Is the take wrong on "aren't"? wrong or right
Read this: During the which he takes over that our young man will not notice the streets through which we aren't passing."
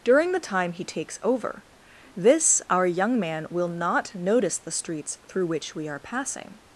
wrong